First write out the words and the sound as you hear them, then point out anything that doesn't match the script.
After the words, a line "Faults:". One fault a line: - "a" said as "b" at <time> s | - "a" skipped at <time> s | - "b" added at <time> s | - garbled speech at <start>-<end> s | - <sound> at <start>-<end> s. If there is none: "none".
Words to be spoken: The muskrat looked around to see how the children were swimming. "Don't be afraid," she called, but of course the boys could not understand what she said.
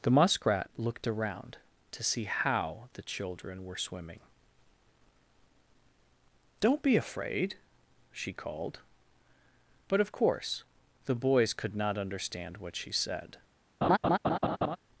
The muskrat looked around to see how the children were swimming. "Don't be afraid," she called, but of course the boys could not understand what she said.
Faults:
- laugh at 13.8-14.8 s